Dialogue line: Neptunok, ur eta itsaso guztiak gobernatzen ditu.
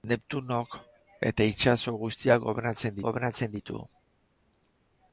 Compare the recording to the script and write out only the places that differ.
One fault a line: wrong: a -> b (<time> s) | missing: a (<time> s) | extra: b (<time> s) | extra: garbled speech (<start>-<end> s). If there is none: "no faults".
missing: ur (0.8 s)
extra: gobernatzen (3.1 s)